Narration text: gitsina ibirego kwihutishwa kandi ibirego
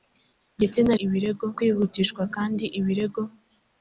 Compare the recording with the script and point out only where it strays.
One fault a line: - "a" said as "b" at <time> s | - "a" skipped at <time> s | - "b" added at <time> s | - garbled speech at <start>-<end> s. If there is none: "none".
none